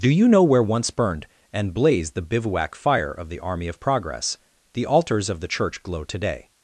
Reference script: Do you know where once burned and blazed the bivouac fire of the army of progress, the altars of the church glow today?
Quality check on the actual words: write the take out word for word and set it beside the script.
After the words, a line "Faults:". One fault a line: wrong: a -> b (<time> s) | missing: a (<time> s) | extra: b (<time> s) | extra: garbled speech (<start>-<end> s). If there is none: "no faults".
Do you know where once burned and blazed the bivouac fire of the army of progress, the altars of the church glow today?
Faults:
no faults